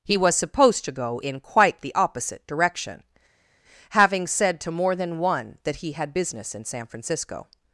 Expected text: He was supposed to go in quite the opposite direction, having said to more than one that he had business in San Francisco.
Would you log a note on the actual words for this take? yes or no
no